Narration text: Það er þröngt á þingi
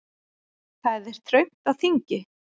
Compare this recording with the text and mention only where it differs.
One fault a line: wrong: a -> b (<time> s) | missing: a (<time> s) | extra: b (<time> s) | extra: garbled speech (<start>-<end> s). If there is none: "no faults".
no faults